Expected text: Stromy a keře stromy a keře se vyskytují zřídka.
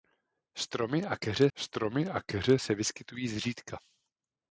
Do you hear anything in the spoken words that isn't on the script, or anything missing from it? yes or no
no